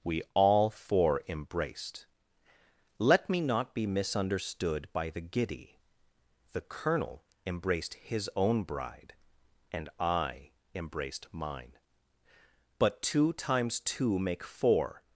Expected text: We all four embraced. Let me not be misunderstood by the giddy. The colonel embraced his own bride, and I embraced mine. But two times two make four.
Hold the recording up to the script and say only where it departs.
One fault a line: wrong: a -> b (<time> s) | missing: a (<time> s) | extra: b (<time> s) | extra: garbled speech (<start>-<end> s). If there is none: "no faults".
no faults